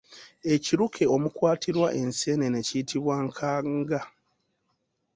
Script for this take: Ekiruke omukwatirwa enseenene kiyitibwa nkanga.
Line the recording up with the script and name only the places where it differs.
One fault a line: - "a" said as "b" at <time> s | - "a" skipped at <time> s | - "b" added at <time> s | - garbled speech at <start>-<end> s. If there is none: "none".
none